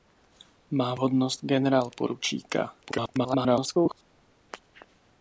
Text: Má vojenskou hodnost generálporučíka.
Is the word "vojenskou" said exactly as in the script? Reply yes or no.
no